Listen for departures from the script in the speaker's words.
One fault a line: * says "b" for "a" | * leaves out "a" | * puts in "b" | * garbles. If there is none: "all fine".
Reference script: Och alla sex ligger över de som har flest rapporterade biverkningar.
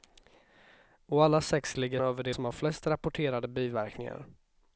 all fine